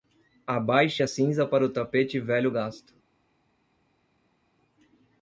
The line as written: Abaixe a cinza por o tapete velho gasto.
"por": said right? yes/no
no